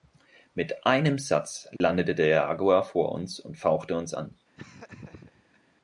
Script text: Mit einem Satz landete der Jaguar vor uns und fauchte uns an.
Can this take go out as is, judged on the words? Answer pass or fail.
pass